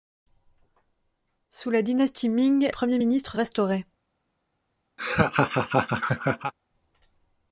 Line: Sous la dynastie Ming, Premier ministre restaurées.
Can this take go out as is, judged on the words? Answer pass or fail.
pass